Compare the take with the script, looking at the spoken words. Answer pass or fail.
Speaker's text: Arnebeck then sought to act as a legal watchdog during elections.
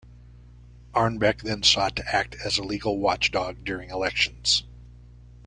pass